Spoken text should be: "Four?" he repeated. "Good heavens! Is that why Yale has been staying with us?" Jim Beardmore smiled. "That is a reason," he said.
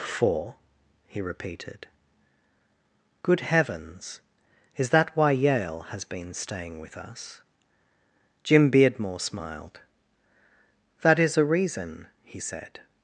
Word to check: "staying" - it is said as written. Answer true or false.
true